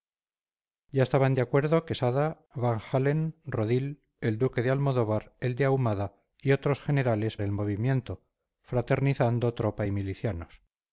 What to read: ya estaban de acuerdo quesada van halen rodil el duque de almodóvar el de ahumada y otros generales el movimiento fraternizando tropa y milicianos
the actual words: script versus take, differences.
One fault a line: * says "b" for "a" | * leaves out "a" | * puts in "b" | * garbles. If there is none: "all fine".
all fine